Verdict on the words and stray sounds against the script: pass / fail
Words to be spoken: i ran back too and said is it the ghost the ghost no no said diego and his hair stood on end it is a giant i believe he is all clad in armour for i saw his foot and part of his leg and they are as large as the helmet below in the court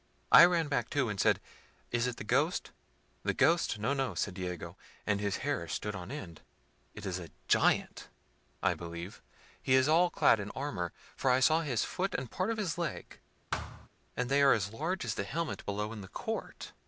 fail